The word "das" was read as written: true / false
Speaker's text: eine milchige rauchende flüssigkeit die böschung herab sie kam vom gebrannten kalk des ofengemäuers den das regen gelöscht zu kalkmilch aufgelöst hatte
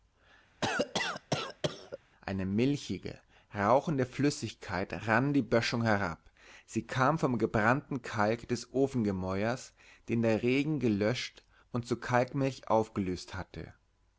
false